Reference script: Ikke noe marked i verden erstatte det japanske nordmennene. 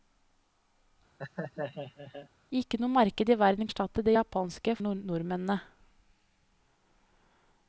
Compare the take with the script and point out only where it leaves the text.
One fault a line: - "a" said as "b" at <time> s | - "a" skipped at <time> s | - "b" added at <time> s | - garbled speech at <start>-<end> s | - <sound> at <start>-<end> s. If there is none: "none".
- laugh at 1.2-2.3 s